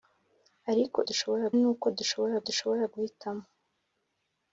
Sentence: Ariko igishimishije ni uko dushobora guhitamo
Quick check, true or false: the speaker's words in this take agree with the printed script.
false